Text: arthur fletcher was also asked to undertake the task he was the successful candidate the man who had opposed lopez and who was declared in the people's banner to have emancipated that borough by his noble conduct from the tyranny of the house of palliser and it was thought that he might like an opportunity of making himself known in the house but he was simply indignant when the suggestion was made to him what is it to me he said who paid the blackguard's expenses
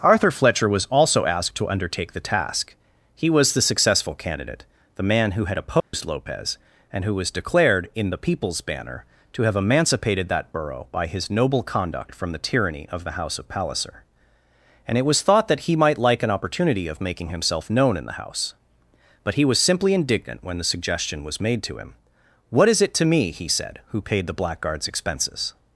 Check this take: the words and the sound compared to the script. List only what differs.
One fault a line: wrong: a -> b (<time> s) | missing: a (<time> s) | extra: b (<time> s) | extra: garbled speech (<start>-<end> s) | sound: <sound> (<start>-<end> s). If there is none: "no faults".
sound: dropout (5.8-5.9 s)